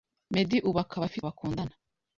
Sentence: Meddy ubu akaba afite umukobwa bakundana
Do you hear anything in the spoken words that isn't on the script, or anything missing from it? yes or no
yes